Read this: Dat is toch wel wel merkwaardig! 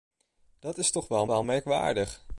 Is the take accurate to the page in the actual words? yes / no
yes